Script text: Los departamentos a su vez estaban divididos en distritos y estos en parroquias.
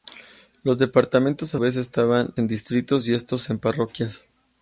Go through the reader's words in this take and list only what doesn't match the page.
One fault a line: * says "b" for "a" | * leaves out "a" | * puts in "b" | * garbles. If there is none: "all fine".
* leaves out "su"
* leaves out "divididos"